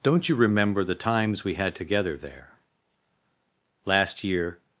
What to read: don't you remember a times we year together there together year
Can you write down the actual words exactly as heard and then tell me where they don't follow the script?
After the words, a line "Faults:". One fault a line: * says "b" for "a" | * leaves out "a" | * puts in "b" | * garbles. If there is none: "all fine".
don't you remember the times we had together there last year
Faults:
* says "the" for "a"
* says "had" for "year"
* says "last" for "together"